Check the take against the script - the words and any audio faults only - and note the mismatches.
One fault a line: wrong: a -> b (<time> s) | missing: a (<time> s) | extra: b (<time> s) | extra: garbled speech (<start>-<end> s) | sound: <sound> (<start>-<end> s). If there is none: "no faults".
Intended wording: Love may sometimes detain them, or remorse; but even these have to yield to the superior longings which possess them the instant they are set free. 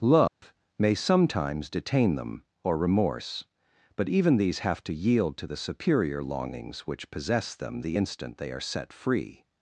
sound: dropout (0.3-0.4 s)